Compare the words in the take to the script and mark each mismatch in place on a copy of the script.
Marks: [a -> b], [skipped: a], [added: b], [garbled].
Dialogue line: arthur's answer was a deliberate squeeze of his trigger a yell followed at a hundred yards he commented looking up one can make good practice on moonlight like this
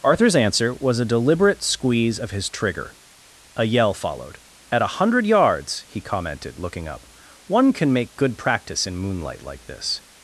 arthur's answer was a deliberate squeeze of his trigger a yell followed at a hundred yards he commented looking up one can make good practice [on -> in] moonlight like this